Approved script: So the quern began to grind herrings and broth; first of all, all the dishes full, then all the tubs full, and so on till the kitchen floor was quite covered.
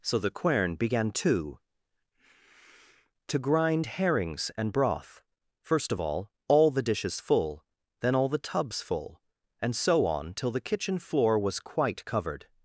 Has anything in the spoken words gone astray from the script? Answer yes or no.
yes